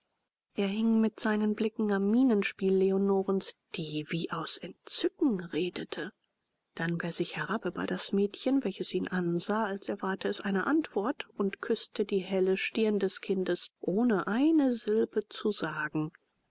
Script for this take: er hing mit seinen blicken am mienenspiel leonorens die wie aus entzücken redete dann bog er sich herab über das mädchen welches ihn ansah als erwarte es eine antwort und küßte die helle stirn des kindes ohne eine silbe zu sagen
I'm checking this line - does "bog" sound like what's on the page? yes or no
no